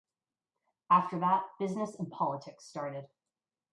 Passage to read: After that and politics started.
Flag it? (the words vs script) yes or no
yes